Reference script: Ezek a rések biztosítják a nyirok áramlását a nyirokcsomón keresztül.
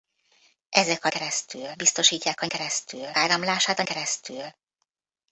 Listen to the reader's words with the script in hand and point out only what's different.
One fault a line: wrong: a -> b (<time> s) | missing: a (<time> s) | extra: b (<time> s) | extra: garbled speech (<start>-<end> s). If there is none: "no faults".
wrong: rések -> keresztül (1.1 s)
wrong: nyirok -> keresztül (2.5 s)
missing: nyirokcsomón (3.8 s)